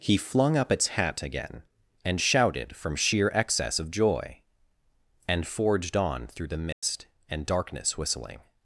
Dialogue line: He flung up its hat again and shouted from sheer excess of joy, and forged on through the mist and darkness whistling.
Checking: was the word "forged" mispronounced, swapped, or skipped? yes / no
no